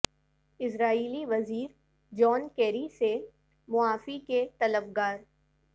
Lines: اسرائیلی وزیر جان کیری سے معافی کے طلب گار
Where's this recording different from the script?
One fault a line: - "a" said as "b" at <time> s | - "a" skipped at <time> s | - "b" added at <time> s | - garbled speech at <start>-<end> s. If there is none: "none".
none